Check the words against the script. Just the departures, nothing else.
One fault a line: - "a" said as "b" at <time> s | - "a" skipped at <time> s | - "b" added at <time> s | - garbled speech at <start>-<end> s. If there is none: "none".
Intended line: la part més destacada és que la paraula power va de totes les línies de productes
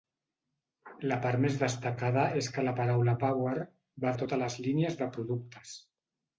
none